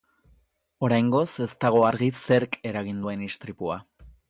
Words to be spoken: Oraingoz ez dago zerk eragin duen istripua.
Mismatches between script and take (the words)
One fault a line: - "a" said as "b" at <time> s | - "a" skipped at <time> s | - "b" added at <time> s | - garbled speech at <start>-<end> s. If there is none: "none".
- "argi" added at 1.9 s